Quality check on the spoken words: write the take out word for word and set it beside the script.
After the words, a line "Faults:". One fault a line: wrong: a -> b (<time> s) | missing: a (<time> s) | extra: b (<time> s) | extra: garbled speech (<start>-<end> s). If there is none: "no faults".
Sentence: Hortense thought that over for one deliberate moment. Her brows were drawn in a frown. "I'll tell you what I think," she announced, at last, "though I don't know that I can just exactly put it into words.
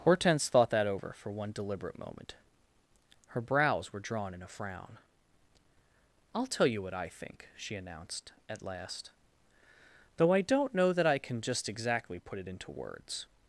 Hortense thought that over for one deliberate moment. Her brows were drawn in a frown. "I'll tell you what I think," she announced, at last, "though I don't know that I can just exactly put it into words.
Faults:
no faults